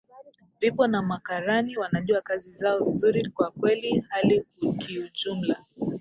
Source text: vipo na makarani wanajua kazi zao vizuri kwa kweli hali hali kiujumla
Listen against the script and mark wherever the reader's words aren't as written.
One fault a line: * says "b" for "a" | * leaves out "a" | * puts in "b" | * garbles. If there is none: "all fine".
* leaves out "hali"